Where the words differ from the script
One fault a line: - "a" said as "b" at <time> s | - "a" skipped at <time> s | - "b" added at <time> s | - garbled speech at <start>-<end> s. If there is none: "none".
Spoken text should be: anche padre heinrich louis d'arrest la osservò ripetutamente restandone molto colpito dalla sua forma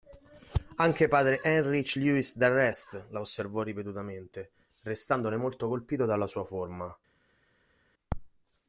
none